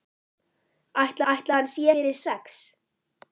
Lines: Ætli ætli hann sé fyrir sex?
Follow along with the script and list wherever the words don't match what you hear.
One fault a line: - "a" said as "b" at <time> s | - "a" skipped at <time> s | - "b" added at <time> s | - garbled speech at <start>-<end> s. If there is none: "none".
none